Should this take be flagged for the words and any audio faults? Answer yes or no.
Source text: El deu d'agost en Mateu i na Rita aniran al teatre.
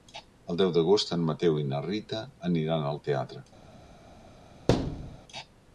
yes